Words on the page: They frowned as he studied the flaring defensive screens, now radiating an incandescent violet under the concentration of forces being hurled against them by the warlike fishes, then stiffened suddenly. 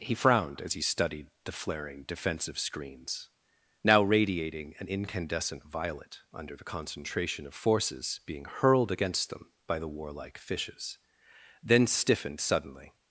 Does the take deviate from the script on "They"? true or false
true